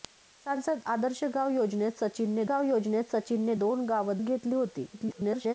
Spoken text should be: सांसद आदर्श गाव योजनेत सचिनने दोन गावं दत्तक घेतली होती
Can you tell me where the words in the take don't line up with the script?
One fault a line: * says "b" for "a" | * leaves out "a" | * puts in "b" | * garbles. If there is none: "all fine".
* puts in "गाव योजनेत सचिनने"
* leaves out "दत्तक"
* garbles